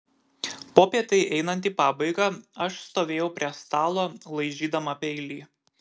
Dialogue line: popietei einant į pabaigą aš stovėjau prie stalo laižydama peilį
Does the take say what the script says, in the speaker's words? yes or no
yes